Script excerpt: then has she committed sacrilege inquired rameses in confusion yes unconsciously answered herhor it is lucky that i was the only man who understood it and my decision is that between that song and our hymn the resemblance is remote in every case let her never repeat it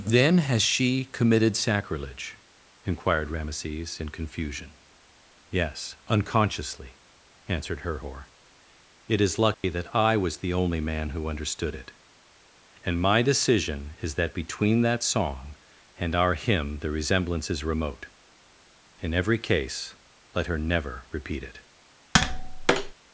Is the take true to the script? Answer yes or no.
yes